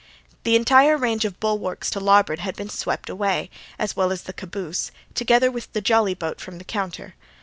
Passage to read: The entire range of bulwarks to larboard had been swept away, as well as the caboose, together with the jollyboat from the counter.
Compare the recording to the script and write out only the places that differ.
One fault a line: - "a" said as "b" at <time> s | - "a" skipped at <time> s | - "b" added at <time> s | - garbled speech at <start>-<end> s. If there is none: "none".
none